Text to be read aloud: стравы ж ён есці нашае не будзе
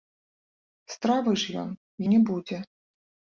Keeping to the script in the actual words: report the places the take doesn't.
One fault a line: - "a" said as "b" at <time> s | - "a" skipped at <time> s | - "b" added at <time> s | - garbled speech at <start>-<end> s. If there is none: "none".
- "есці нашае" skipped at 1.7 s